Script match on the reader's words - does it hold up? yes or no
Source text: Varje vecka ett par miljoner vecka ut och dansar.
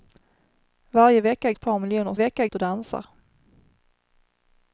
yes